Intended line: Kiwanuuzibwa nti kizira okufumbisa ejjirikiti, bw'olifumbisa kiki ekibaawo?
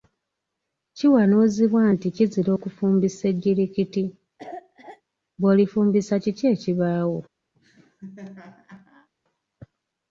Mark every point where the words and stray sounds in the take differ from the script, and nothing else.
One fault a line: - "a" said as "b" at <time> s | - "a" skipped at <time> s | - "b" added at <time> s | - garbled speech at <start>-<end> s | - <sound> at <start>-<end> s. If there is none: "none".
- cough at 4.4-5.0 s
- laugh at 7.5-9.1 s